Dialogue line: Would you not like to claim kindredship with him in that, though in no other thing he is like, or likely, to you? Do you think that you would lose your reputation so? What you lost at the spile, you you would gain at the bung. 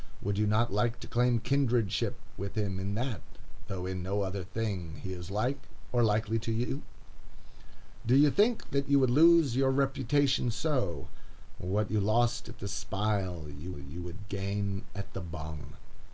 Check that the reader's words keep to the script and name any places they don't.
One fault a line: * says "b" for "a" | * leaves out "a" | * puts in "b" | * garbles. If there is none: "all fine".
all fine